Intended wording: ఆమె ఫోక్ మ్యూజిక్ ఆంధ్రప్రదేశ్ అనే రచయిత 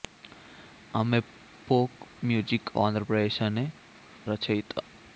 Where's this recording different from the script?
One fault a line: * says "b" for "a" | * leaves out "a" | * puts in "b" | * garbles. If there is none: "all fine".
all fine